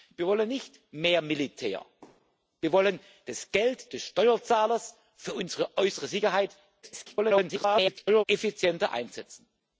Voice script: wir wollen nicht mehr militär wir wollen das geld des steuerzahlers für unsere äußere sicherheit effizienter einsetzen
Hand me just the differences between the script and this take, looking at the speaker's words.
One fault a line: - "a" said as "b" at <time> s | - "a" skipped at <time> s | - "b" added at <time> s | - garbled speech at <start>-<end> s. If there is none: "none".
- garbled speech at 6.8-8.2 s